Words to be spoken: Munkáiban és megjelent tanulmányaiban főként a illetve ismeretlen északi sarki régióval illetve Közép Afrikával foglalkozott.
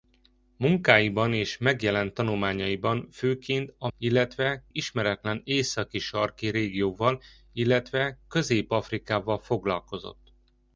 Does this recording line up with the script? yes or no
yes